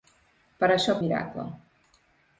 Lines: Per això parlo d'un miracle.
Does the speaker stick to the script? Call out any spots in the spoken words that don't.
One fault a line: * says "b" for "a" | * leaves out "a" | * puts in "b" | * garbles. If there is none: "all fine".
* leaves out "parlo d'un"